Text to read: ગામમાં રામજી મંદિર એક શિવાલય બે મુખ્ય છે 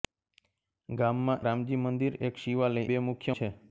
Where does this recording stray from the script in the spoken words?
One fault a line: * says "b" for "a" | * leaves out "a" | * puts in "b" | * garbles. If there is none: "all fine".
all fine